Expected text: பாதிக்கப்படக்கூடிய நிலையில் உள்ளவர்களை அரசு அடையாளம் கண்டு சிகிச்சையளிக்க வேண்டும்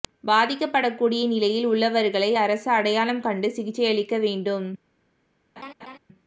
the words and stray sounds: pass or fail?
fail